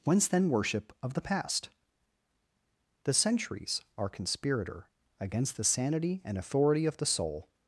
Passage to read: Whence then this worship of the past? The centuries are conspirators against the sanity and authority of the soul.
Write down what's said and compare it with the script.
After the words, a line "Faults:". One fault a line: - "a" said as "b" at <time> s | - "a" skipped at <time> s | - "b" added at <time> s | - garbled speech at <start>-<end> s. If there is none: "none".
Whence then worship of the past? The centuries are conspirator against the sanity and authority of the soul.
Faults:
- "this" skipped at 0.5 s
- "conspirators" said as "conspirator" at 4.1 s